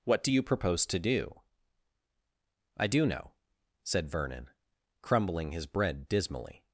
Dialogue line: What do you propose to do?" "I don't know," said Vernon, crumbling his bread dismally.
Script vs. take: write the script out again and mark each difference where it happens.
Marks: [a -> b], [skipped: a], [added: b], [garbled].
What do you propose to do?" "I [don't -> do] know," said Vernon, crumbling his bread dismally.